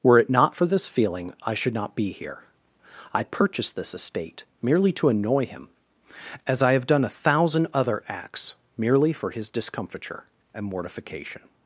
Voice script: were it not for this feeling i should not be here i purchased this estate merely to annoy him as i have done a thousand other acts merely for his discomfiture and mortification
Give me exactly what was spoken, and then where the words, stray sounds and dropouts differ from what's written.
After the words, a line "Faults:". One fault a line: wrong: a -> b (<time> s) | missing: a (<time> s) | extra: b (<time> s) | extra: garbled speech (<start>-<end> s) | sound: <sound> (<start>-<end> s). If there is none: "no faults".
were it not for this feeling i should not be here i purchased this estate merely to annoy him as i have done a thousand other acts merely for his discomfiture and mortification
Faults:
no faults